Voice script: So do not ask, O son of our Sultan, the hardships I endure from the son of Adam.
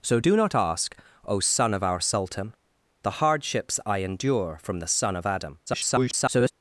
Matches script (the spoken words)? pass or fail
fail